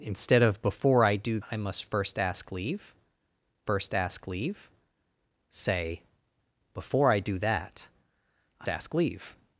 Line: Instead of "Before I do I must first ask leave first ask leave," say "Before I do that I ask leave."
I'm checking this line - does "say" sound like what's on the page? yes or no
yes